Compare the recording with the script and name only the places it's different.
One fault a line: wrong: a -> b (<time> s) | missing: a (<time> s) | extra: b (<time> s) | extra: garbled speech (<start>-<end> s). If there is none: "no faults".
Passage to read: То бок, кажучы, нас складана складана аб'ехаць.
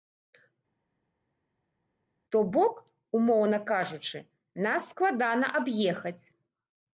extra: умоўна (3.2 s)
missing: складана (5.5 s)